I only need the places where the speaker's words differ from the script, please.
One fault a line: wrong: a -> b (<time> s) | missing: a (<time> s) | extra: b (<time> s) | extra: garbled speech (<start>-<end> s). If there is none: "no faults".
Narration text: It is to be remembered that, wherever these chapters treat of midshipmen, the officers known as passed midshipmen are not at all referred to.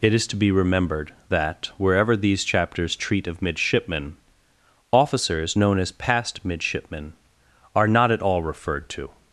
missing: the (4.2 s)